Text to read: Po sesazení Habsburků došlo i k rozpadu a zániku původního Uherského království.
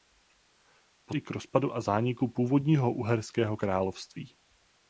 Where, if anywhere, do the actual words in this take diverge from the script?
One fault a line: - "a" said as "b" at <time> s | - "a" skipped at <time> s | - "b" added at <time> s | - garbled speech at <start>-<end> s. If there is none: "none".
- "sesazení Habsburků došlo" skipped at 1.1 s